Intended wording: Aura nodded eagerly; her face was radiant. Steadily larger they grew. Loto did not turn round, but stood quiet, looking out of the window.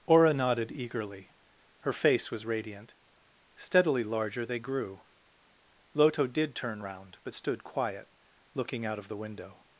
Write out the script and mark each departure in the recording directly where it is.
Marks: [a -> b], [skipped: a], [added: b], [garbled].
Aura nodded eagerly; her face was radiant. Steadily larger they grew. Loto did [skipped: not] turn round, but stood quiet, looking out of the window.